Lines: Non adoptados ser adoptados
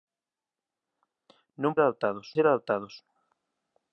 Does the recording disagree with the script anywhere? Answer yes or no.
no